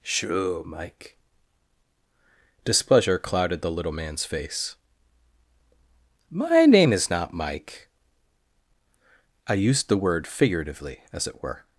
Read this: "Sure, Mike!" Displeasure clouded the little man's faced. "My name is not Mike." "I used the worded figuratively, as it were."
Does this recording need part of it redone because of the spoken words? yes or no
yes